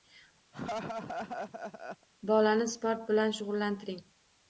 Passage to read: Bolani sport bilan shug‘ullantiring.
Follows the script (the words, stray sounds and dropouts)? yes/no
no